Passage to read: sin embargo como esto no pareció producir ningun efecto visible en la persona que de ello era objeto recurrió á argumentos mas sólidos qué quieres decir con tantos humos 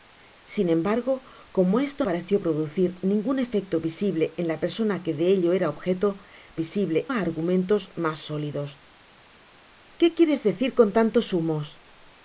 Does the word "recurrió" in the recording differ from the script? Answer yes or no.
yes